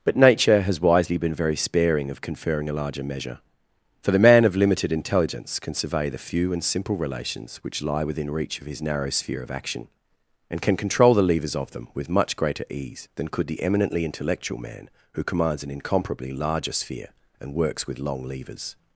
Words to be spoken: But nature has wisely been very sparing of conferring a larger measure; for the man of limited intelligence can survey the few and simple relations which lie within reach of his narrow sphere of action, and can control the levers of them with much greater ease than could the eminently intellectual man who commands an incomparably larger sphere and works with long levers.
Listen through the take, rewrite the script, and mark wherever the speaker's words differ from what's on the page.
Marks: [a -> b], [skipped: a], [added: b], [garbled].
But nature has wisely been very sparing of conferring a larger measure; for the man of limited intelligence can survey the few and simple relations which lie within reach of his narrow sphere of action, and can control the levers of them with much greater ease than could the eminently intellectual man who commands an incomparably larger sphere and works with long levers.